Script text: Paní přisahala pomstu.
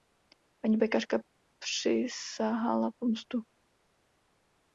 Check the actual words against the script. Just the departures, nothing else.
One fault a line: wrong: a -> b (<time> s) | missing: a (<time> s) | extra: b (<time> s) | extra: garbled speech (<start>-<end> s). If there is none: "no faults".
extra: pekařka (0.8 s)